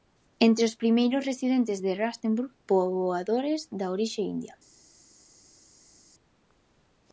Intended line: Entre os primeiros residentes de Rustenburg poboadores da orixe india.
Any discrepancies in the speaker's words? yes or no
no